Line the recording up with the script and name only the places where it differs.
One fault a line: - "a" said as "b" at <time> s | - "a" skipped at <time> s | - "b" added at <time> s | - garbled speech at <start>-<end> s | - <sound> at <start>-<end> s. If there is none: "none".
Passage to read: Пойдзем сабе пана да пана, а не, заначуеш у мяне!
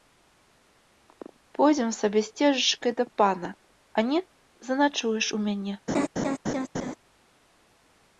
- "пана" said as "сцежачкай" at 2.3 s
- laugh at 5.9-6.9 s